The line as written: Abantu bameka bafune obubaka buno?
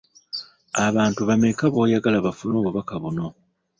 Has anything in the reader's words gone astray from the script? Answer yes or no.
yes